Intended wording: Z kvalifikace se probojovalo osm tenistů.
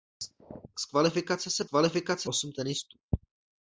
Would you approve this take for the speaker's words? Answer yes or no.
no